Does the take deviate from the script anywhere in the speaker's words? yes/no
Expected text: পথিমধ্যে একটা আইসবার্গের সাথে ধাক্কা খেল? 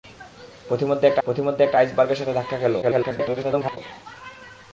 yes